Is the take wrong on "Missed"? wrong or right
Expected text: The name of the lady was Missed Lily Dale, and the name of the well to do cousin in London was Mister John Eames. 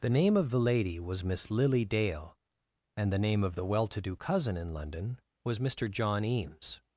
wrong